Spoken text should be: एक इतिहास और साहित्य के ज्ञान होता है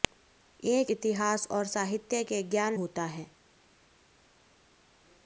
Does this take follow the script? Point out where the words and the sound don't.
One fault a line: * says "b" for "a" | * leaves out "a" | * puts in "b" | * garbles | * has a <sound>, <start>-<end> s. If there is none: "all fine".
all fine